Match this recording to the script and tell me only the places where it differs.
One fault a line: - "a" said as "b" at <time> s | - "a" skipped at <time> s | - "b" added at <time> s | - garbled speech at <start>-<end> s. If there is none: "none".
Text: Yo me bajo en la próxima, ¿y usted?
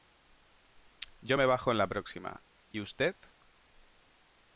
none